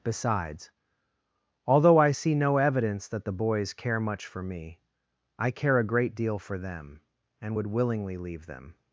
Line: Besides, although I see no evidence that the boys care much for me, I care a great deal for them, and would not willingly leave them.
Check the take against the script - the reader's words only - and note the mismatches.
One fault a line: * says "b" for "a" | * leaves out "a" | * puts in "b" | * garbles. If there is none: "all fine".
* leaves out "not"